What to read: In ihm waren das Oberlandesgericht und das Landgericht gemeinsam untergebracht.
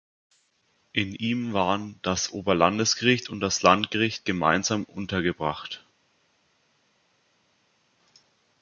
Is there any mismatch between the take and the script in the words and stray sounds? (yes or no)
no